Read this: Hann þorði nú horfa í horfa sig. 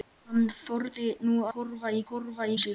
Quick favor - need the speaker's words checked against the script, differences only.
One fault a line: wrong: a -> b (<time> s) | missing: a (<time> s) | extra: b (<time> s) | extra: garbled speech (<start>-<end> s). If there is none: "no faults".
no faults